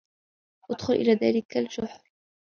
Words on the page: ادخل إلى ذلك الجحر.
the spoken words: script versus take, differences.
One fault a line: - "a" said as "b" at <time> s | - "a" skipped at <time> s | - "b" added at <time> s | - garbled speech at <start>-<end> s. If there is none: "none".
none